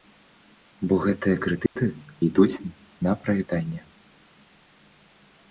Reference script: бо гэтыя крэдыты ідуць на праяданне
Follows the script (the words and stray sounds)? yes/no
no